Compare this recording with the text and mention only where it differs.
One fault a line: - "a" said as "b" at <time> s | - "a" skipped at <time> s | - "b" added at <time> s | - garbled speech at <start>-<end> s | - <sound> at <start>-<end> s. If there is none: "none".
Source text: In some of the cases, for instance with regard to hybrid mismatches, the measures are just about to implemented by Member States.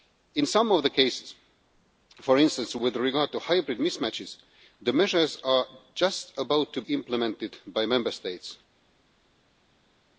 none